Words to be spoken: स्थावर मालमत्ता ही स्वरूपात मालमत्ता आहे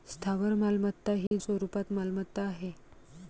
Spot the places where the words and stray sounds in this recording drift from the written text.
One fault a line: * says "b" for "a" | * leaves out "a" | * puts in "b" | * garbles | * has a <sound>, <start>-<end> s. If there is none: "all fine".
* has a dropout, 1.3-1.3 s